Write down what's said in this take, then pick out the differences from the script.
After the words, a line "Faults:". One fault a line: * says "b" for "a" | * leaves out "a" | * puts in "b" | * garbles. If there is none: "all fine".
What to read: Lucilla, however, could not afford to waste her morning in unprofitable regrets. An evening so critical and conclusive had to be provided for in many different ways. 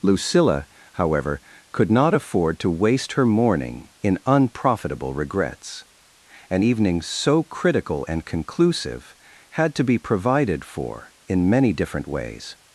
Lucilla, however, could not afford to waste her morning in unprofitable regrets. An evening so critical and conclusive had to be provided for in many different ways.
Faults:
all fine